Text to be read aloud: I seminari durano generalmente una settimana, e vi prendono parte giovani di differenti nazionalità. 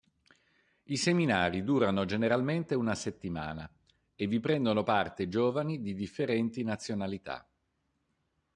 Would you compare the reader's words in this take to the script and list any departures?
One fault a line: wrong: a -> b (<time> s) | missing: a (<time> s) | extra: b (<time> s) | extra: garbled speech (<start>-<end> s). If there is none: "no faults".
no faults